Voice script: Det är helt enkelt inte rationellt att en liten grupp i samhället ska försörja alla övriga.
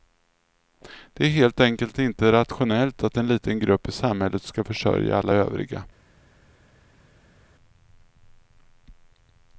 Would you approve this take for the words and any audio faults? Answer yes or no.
yes